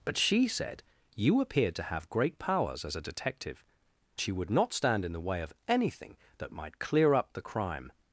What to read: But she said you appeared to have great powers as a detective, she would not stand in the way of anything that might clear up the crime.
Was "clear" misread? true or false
false